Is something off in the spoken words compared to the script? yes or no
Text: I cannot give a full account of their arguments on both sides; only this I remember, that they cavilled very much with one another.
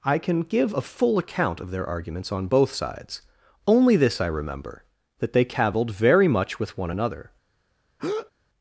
yes